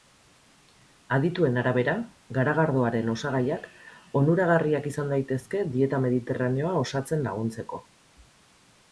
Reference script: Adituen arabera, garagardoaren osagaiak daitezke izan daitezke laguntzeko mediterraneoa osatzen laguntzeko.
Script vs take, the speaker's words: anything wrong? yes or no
yes